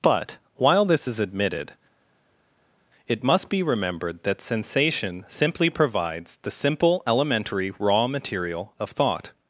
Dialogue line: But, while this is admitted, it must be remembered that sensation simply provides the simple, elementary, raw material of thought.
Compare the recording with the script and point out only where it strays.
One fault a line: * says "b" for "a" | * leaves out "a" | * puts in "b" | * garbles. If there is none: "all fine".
all fine